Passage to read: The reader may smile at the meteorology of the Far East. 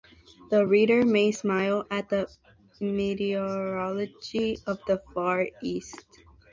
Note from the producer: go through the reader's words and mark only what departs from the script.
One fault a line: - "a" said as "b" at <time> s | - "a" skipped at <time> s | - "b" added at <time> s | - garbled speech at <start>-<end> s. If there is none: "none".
none